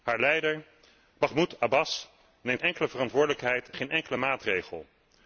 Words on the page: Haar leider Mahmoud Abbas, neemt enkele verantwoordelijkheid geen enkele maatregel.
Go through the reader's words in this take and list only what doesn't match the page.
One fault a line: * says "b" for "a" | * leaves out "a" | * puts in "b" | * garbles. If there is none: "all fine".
all fine